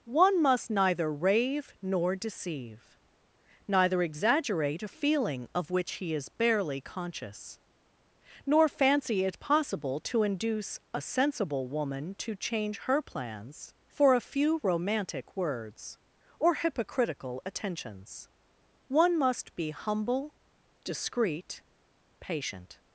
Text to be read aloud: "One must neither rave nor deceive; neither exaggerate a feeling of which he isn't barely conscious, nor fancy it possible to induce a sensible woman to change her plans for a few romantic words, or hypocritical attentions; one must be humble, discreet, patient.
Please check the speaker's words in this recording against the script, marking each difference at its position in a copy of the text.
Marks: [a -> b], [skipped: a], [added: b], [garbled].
"One must neither rave nor deceive; neither exaggerate a feeling of which he [isn't -> is] barely conscious, nor fancy it possible to induce a sensible woman to change her plans for a few romantic words, or hypocritical attentions; one must be humble, discreet, patient.